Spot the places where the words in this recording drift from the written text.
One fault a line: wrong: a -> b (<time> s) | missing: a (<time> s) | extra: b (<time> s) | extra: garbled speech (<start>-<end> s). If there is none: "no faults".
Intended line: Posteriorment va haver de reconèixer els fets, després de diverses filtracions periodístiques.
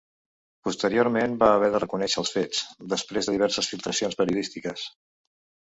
no faults